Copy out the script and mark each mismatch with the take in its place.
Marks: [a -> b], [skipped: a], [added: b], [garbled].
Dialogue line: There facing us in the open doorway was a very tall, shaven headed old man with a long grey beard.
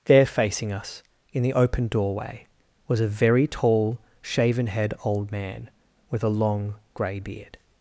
There facing us in the open doorway was a very tall, shaven [headed -> head] old man with a long grey beard.